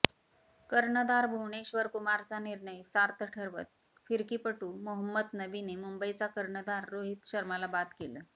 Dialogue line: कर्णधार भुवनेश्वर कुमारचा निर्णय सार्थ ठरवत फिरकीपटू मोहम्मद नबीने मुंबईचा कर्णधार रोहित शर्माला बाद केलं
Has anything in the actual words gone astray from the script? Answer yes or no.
no